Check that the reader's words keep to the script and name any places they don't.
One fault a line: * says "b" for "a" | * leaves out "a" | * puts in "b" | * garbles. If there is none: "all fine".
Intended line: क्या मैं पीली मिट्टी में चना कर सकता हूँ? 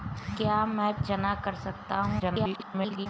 * leaves out "पीली मिट्टी में"
* garbles